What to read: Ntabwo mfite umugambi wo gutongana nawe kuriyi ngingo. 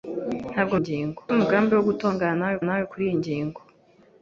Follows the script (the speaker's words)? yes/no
no